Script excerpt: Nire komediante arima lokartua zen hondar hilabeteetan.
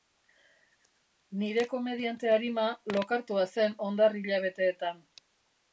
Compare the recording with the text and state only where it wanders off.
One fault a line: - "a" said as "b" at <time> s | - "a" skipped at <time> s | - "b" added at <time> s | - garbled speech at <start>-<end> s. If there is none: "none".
none